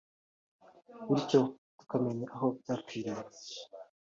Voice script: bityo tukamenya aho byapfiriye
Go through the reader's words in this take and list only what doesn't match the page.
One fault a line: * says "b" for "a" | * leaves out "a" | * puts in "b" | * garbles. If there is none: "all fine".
all fine